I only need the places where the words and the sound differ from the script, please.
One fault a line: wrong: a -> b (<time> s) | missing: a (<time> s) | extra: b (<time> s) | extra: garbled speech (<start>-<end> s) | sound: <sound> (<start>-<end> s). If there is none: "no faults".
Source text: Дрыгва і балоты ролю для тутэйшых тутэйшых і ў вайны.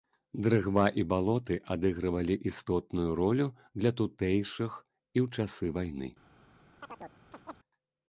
extra: адыгрывалі істотную (1.8 s)
missing: тутэйшых (4.7 s)
extra: часы (5.4 s)
sound: chirp (6.8-7.6 s)